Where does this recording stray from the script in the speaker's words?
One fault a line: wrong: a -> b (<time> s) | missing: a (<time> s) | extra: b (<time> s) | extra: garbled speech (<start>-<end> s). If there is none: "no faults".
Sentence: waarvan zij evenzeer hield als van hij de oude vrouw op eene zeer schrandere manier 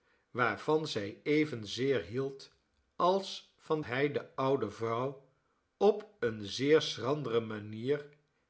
no faults